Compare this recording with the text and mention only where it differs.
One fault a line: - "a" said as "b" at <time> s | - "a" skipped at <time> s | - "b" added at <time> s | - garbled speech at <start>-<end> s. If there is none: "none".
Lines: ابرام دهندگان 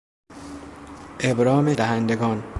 none